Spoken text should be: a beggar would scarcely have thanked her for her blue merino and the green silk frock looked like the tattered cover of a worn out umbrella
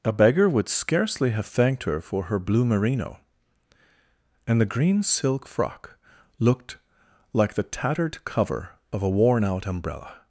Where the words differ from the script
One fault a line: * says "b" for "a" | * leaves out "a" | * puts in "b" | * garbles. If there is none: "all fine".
all fine